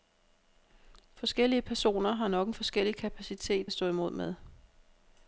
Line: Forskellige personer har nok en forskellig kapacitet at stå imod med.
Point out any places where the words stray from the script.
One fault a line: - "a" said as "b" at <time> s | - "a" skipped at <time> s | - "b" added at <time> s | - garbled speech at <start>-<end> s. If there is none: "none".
none